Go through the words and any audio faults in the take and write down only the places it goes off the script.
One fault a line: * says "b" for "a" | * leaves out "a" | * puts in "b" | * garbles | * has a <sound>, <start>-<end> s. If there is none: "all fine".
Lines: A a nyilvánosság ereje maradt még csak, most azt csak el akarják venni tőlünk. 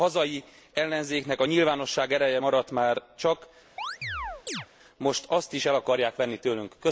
* puts in "hazai ellenzéknek"
* says "már" for "még"
* has a chirp, 3.8-4.7 s
* says "is" for "csak"